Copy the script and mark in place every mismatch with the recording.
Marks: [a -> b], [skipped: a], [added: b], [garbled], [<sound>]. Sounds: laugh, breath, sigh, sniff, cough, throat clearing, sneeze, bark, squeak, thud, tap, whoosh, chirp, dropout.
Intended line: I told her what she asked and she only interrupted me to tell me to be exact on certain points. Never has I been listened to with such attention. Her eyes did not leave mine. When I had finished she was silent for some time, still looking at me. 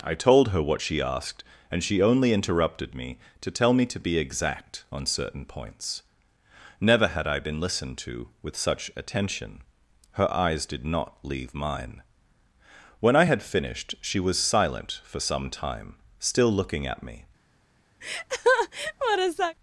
I told her what she asked and she only interrupted me to tell me to be exact on certain points. Never [has -> had] I been listened to with such attention. Her eyes did not leave mine. When I had finished she was silent for some time, still looking at me. [laugh]